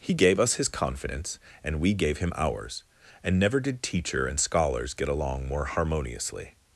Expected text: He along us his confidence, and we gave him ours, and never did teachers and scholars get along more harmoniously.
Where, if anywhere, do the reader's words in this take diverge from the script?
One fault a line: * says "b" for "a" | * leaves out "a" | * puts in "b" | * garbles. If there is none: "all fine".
* says "gave" for "along"
* says "teacher" for "teachers"